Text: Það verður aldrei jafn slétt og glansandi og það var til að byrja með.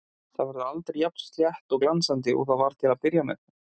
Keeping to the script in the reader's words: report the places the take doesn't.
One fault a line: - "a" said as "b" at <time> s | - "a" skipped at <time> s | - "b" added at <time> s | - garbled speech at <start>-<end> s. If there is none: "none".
none